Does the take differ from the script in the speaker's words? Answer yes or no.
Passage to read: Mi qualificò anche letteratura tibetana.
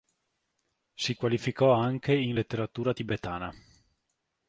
yes